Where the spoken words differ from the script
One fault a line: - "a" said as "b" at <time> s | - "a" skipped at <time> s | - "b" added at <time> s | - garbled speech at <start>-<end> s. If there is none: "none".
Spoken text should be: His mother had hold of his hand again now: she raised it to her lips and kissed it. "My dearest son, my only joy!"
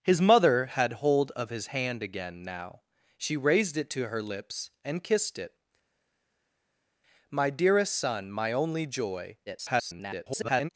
- garbled speech at 9.5-10.7 s